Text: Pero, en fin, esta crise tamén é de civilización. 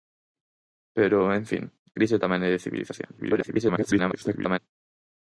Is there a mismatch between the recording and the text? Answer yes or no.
yes